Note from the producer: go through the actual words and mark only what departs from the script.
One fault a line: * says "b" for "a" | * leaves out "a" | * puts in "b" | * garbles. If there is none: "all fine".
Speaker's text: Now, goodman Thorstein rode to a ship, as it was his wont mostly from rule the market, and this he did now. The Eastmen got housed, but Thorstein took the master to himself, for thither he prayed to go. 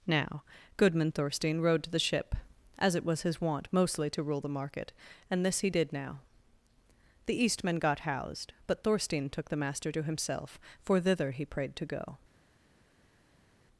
* says "the" for "a"
* says "to" for "from"